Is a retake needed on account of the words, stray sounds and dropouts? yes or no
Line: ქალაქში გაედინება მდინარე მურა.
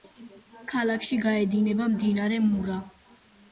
no